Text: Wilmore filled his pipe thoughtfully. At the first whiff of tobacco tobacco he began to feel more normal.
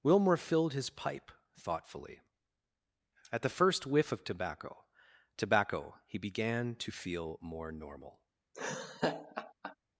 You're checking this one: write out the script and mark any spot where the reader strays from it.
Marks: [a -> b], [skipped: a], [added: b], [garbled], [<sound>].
Wilmore filled his pipe thoughtfully. At the first whiff of tobacco tobacco he began to feel more normal. [laugh]